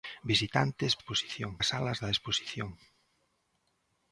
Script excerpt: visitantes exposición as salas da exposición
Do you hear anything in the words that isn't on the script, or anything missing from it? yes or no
no